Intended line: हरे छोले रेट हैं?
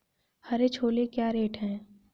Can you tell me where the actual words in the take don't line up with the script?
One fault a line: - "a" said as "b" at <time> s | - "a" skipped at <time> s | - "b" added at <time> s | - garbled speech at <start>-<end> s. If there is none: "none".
- "क्या" added at 1.1 s